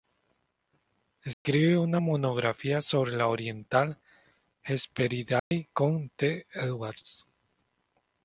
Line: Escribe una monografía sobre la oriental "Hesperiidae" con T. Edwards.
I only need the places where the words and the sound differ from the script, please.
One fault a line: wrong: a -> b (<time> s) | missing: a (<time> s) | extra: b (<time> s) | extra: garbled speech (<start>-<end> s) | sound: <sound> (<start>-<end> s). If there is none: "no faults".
sound: dropout (1.3-1.5 s)
sound: dropout (5.4-5.5 s)